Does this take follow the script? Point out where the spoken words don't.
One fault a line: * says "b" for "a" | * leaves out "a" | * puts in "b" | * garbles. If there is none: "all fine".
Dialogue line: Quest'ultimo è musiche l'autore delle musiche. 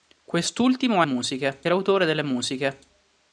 all fine